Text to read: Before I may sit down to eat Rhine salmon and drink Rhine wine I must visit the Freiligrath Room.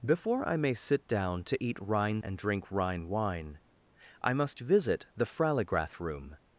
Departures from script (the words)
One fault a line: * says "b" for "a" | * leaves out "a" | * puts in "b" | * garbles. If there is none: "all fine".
* leaves out "salmon"